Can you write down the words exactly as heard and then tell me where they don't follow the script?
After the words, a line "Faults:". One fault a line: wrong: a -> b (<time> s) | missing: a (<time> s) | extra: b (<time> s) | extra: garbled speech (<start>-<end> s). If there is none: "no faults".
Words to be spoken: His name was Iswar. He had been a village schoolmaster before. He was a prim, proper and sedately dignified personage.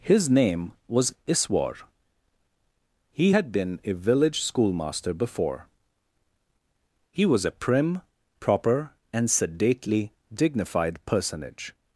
His name was Iswar. He had been a village schoolmaster before. He was a prim, proper and sedately dignified personage.
Faults:
no faults